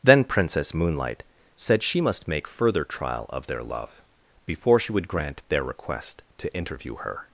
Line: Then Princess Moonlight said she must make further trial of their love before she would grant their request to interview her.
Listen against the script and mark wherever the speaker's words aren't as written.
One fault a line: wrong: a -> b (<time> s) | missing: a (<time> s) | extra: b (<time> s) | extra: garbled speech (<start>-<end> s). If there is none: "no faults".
no faults